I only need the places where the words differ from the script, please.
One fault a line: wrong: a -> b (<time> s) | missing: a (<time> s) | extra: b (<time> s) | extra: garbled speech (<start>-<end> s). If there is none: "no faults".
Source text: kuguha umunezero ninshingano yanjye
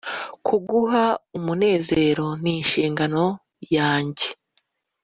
no faults